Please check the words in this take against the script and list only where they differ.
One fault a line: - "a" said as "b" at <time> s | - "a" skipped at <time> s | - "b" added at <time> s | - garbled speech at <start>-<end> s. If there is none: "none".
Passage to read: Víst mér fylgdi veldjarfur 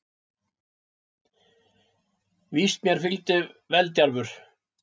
none